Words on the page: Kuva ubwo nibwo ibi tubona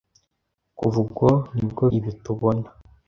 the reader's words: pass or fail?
pass